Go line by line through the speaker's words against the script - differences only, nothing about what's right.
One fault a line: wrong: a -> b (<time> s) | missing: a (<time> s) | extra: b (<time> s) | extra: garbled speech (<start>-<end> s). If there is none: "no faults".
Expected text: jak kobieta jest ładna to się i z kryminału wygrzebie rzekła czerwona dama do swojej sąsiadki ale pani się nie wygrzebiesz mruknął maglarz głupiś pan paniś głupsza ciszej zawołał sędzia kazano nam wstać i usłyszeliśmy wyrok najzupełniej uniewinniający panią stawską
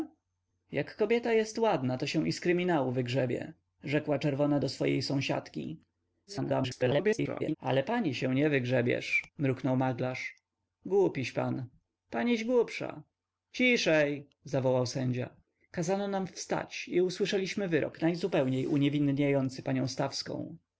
missing: dama (4.6 s)
extra: garbled speech (6.3-7.6 s)